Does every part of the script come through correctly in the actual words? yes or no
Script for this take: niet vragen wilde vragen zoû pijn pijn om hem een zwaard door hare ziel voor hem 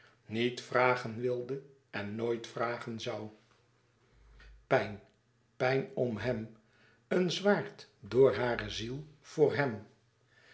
no